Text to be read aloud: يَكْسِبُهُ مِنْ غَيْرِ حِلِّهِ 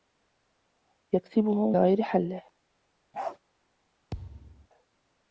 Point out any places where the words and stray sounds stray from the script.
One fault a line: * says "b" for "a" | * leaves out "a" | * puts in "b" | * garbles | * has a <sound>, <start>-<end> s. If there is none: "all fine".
* leaves out "مِنْ"
* has a bark, 3.1-3.4 s
* has a thud, 4.1-4.7 s